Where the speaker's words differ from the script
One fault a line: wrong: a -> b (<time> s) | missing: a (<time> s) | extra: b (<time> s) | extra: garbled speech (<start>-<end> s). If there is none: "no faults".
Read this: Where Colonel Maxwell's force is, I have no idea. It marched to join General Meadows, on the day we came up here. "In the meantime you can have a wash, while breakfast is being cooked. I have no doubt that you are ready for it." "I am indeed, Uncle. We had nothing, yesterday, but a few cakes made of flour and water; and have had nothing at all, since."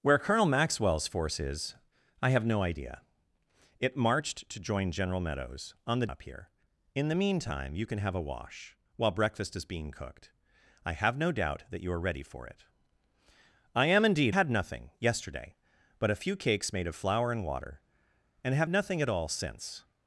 missing: day we came (6.1 s)
missing: Uncle We (14.4 s)
missing: had (18.7 s)